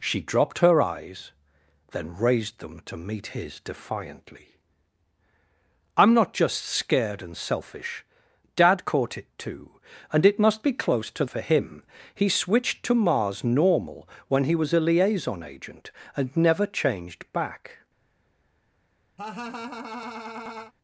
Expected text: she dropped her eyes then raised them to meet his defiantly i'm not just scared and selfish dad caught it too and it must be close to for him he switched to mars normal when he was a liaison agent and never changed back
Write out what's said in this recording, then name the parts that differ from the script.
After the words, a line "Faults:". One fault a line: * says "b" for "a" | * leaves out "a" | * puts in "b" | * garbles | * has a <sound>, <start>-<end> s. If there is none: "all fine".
she dropped her eyes then raised them to meet his defiantly i'm not just scared and selfish dad caught it too and it must be close to for him he switched to mars normal when he was a liaison agent and never changed back
Faults:
* has a laugh, 19.2-20.7 s